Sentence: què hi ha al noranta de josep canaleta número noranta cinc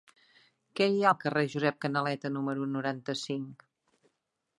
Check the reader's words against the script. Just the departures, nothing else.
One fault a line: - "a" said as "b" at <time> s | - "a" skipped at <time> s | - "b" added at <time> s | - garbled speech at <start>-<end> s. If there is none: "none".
- "noranta" said as "carrer" at 1.2 s